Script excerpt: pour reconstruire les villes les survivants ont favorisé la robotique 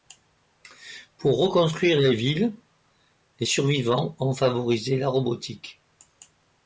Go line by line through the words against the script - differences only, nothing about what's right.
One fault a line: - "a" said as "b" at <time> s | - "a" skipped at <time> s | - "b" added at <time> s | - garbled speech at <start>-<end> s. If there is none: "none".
none